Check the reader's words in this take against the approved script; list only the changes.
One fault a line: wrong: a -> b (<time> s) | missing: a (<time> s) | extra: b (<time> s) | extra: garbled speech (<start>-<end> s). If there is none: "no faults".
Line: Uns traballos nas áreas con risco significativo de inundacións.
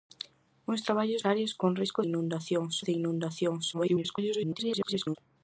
missing: nas (1.3 s)
wrong: significativo -> inundacións (2.1 s)
extra: garbled speech (3.7-5.2 s)